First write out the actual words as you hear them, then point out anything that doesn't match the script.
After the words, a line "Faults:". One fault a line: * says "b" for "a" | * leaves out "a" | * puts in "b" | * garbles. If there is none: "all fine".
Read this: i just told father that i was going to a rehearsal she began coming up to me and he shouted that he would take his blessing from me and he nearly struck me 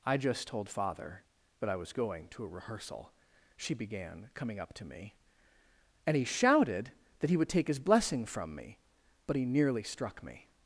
i just told father that i was going to a rehearsal she began coming up to me and he shouted that he would take his blessing from me but he nearly struck me
Faults:
* says "but" for "and"